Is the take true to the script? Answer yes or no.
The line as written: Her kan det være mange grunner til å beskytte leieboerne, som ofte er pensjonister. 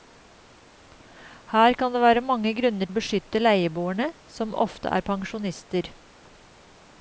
no